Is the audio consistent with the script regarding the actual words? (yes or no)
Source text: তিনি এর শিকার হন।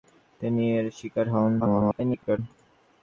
no